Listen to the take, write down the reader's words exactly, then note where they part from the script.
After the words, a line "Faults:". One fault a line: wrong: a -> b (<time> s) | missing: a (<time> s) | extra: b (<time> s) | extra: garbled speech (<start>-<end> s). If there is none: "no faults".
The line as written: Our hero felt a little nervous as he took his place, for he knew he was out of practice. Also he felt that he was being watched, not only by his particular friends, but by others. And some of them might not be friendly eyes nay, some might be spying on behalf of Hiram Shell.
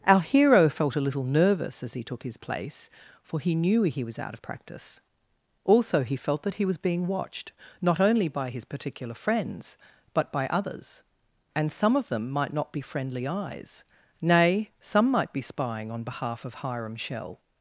Our hero felt a little nervous as he took his place, for he knew he was out of practice. Also he felt that he was being watched, not only by his particular friends, but by others. And some of them might not be friendly eyes nay, some might be spying on behalf of Hiram Shell.
Faults:
no faults